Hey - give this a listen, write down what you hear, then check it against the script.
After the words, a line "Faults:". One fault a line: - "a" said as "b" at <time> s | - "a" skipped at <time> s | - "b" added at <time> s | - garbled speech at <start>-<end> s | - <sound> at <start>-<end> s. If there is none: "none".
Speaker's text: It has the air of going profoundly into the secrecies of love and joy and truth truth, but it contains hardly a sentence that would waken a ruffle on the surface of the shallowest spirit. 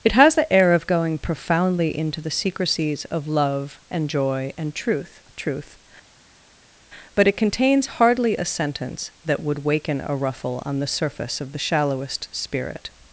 It has the air of going profoundly into the secrecies of love and joy and truth truth, but it contains hardly a sentence that would waken a ruffle on the surface of the shallowest spirit.
Faults:
none